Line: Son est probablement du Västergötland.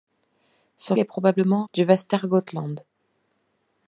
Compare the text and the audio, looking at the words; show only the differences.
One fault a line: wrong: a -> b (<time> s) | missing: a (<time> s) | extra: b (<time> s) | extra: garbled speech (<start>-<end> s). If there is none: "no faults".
no faults